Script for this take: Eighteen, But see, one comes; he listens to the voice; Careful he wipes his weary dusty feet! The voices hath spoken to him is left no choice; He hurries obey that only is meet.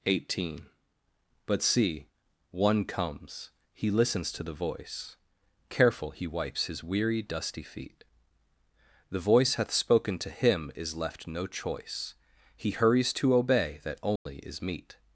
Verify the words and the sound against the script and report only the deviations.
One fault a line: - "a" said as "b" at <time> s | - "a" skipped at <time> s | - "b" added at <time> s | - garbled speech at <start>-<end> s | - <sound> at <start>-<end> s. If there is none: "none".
- "voices" said as "voice" at 9.2 s
- "to" added at 13.1 s
- dropout at 14.2-14.3 s